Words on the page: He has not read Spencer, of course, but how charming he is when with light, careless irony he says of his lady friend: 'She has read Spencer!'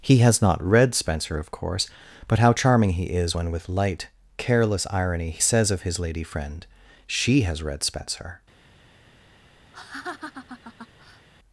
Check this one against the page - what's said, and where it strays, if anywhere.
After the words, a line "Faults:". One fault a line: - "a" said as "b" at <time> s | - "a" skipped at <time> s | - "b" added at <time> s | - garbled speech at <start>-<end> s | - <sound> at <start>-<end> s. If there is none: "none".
He has not read Spencer, of course, but how charming he is when with light, careless irony he says of his lady friend: 'She has read Spencer!'
Faults:
- laugh at 9.7-11.3 s